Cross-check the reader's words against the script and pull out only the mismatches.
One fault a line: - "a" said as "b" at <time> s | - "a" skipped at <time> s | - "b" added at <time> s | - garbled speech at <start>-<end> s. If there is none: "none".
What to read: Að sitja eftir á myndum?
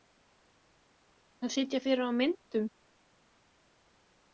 - "eftir" said as "fyrir" at 1.8 s